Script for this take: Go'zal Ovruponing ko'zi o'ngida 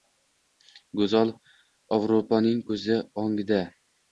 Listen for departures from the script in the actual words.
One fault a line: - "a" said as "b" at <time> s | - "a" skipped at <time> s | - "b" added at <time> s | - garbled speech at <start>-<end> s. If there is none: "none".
none